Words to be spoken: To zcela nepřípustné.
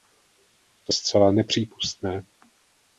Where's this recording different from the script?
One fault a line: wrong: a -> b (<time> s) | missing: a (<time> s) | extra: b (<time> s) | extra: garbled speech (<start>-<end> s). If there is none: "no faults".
no faults